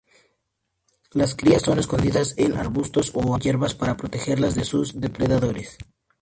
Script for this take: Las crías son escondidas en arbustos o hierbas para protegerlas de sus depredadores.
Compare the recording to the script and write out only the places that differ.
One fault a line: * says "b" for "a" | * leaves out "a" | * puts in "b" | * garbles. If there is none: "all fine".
all fine